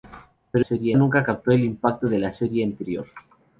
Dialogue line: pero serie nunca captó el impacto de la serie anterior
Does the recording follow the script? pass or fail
pass